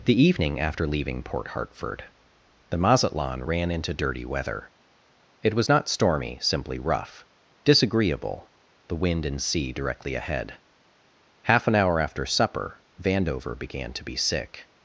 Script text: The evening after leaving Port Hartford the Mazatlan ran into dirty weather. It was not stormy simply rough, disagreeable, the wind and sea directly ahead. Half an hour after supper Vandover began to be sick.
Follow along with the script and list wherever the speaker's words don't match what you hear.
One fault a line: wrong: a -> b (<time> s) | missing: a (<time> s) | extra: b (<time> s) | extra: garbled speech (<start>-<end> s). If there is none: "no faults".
no faults